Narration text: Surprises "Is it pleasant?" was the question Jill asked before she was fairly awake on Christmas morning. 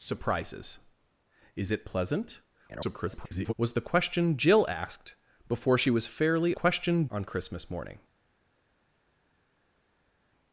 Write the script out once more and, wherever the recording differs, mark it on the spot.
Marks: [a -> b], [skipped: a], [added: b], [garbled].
Surprises "Is it pleasant?" [garbled] was the question Jill asked before she was fairly [awake -> question] on Christmas morning.